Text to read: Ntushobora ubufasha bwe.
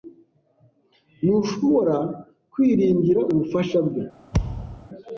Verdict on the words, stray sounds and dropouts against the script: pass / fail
fail